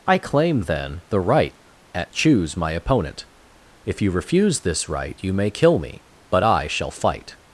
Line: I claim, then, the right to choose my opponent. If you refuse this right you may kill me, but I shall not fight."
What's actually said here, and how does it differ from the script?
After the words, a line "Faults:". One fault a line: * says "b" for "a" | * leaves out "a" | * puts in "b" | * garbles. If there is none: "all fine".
I claim, then, the right at choose my opponent. If you refuse this right you may kill me, but I shall fight."
Faults:
* says "at" for "to"
* leaves out "not"